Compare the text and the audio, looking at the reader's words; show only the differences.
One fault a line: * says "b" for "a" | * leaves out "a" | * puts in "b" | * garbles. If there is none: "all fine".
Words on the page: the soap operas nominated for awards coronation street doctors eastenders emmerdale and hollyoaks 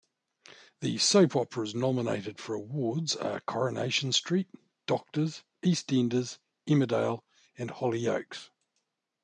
* puts in "are"